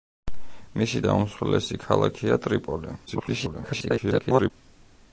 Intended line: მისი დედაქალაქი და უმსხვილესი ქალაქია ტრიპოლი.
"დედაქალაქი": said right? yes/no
no